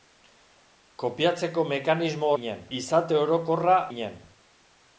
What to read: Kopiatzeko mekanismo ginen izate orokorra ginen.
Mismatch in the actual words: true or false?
false